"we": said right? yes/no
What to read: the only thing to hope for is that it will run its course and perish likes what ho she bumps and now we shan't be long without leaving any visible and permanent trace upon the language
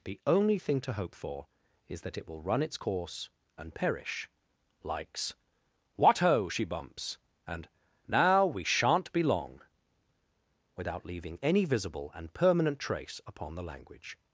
yes